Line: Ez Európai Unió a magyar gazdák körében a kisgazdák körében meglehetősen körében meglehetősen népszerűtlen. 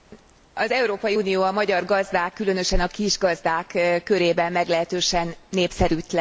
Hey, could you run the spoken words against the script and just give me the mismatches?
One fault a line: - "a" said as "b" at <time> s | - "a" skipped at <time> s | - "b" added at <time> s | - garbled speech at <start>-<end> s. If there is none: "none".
- "Ez" said as "Az" at 0.5 s
- "körében" said as "különösen" at 2.3 s
- "körében meglehetősen" skipped at 5.3 s